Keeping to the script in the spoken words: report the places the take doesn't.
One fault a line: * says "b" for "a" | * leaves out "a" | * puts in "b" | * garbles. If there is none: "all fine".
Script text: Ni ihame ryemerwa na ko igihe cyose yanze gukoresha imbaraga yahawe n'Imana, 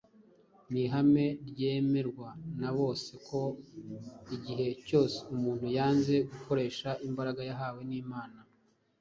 * puts in "bose"
* puts in "umuntu"